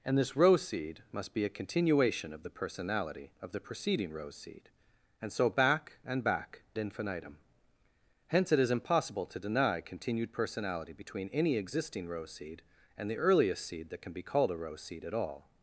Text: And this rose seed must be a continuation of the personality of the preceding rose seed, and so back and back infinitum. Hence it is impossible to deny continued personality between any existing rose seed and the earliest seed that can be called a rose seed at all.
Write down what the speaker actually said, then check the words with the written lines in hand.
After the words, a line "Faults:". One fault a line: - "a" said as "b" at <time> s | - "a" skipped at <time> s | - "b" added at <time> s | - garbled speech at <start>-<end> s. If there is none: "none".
And this rose seed must be a continuation of the personality of the preceding rose seed, and so back and back infinitum. Hence it is impossible to deny continued personality between any existing rose seed and the earliest seed that can be called a rose seed at all.
Faults:
none